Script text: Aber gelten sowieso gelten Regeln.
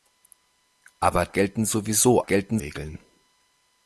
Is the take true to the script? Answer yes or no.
yes